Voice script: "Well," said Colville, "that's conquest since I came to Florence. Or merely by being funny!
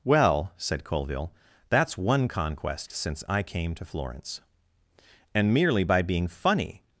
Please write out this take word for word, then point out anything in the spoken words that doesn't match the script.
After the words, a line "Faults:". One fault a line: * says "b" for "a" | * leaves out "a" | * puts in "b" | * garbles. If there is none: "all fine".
"Well," said Colville, "that's one conquest since I came to Florence. And merely by being funny!
Faults:
* puts in "one"
* says "And" for "Or"